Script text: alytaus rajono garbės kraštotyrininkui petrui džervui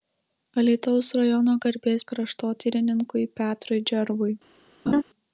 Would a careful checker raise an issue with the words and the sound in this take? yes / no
yes